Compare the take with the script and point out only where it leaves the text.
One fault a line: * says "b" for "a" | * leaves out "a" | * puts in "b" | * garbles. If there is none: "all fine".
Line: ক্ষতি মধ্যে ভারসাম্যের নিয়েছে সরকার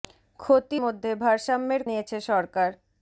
all fine